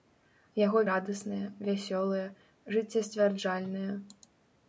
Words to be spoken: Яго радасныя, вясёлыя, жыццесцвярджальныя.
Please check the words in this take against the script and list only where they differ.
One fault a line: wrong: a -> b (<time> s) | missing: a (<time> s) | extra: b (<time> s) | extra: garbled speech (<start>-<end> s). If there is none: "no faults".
no faults